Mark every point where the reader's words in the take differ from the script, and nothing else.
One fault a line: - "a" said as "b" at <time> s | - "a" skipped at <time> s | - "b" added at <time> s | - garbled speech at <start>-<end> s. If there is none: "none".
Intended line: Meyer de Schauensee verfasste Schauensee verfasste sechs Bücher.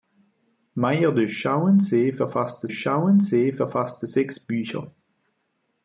none